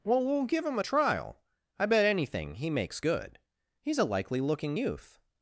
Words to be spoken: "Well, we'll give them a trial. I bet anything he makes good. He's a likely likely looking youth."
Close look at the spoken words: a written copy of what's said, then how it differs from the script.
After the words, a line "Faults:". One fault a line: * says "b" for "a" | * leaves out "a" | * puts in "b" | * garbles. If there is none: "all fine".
"Well, we'll give him a trial. I bet anything he makes good. He's a likely looking youth."
Faults:
* says "him" for "them"
* leaves out "likely"